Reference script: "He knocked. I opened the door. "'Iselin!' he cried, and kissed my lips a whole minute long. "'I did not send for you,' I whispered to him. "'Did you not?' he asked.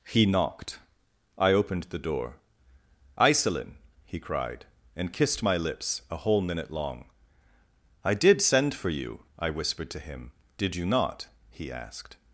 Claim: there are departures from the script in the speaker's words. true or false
true